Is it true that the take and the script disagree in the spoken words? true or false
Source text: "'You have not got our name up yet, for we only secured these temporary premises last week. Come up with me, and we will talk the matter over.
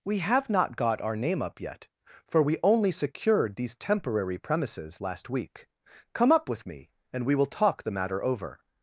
true